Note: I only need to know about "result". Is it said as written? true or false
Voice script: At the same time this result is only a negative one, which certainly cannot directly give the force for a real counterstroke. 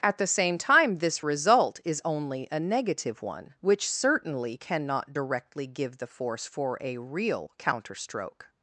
true